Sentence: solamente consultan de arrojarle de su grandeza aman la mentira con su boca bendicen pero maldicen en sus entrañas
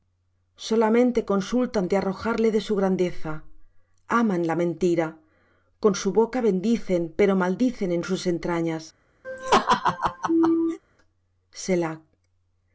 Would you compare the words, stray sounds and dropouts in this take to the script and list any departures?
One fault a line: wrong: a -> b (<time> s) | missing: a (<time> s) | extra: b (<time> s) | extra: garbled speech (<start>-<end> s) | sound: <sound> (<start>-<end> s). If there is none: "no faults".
sound: laugh (9.2-10.8 s)